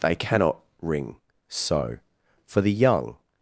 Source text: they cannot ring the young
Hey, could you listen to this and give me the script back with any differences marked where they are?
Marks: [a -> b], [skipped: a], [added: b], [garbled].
they cannot ring [added: so for] the young